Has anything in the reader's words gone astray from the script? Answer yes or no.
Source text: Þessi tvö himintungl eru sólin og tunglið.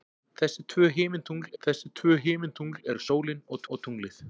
yes